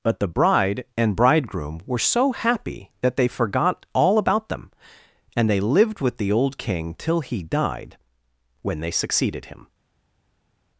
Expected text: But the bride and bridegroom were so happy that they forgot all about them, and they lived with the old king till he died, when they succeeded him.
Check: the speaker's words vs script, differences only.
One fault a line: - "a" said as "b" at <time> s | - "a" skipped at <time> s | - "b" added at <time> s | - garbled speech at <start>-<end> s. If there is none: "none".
none